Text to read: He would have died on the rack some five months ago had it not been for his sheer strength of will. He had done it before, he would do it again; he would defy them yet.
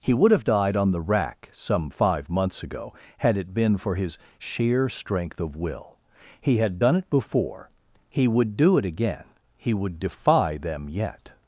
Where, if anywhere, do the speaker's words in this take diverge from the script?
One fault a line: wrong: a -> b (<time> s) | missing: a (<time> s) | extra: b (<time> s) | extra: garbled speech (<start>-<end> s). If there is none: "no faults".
missing: not (3.5 s)